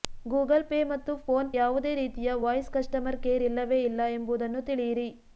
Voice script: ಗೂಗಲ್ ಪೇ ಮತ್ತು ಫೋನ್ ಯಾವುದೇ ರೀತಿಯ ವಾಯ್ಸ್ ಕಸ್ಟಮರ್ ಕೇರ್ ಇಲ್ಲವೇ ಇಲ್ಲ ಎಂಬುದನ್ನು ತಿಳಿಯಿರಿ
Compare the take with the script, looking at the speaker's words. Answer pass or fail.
pass